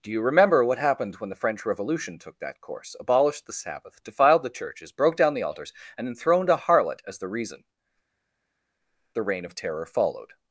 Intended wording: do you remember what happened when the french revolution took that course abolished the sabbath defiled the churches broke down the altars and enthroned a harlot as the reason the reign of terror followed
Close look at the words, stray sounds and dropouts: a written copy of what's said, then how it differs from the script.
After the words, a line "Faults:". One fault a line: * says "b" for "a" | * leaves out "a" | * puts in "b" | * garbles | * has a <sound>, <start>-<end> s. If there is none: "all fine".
do you remember what happened when the french revolution took that course abolished the sabbath defiled the churches broke down the altars and enthroned a harlot as the reason the reign of terror followed
Faults:
all fine